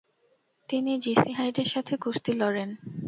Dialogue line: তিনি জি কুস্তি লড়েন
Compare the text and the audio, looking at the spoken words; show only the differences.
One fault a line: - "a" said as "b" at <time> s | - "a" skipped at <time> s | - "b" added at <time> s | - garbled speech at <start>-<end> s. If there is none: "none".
- "সি হাইডের সাথে" added at 1.2 s